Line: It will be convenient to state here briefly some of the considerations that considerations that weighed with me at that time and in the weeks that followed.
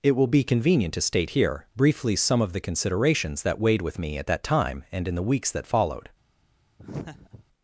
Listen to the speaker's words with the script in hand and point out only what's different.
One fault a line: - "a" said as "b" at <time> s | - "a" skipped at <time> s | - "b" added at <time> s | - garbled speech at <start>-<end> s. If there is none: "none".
- "considerations that" skipped at 3.6 s